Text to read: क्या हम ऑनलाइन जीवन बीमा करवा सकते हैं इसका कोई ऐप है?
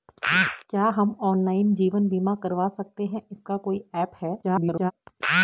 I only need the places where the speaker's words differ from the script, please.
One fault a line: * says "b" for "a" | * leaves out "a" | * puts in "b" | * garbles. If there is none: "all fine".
* garbles